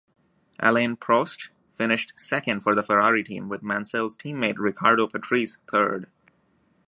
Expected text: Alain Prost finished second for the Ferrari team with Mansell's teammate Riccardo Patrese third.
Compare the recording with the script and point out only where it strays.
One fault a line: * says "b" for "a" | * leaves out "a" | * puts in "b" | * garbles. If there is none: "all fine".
all fine